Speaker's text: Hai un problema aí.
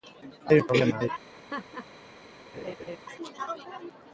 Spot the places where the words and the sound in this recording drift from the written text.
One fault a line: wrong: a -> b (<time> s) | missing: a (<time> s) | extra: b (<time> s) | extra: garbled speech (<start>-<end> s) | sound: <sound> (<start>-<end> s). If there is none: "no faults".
sound: laugh (1.3-1.9 s)
sound: laugh (2.5-3.0 s)